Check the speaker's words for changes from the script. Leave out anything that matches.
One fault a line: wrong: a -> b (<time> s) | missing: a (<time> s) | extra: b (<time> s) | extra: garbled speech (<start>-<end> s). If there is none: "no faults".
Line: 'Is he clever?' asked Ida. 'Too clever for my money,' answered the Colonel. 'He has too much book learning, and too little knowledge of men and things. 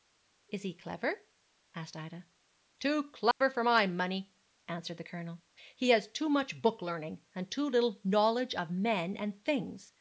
no faults